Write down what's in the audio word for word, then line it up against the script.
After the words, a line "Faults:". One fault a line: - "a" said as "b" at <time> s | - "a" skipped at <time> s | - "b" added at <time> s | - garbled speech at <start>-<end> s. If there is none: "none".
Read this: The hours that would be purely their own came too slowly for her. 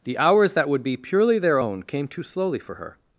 The hours that would be purely their own came too slowly for her.
Faults:
none